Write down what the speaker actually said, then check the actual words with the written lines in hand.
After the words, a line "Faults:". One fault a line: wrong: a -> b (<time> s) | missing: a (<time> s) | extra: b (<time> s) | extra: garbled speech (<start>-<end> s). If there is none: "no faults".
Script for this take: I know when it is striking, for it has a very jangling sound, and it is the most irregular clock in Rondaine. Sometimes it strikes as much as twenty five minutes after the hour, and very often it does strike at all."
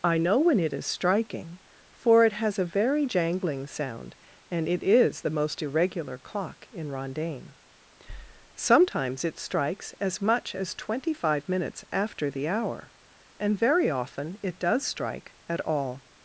I know when it is striking, for it has a very jangling sound, and it is the most irregular clock in Rondaine. Sometimes it strikes as much as twenty five minutes after the hour, and very often it does strike at all."
Faults:
no faults